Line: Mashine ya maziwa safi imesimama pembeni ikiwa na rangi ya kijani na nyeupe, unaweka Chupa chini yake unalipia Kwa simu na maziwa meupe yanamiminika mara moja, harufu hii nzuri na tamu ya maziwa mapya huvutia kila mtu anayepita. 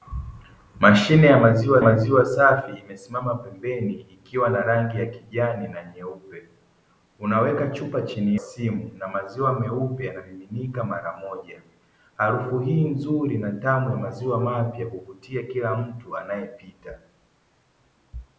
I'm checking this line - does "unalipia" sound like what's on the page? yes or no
no